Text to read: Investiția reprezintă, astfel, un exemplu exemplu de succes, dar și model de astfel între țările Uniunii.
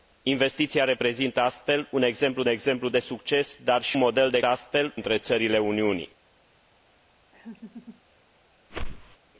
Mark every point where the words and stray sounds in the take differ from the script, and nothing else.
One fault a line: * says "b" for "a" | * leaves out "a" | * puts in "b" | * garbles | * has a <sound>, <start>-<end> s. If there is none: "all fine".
* has a laugh, 7.3-8.0 s
* has a whoosh, 8.7-9.2 s